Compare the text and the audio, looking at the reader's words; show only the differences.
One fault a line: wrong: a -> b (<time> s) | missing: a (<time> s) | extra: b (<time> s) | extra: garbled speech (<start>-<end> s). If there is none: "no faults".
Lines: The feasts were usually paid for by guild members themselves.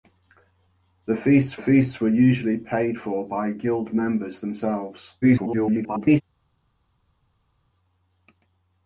extra: feasts (1.6 s)
extra: garbled speech (5.2-6.2 s)